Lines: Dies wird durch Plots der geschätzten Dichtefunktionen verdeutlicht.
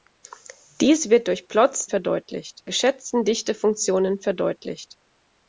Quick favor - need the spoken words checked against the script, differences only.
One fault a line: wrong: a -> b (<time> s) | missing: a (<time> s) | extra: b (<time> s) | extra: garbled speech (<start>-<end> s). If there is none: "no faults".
wrong: der -> verdeutlicht (1.9 s)